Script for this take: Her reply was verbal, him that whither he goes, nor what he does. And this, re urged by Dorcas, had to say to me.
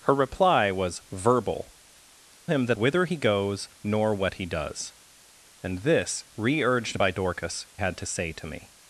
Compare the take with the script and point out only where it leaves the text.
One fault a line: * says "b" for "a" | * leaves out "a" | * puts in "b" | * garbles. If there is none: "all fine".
all fine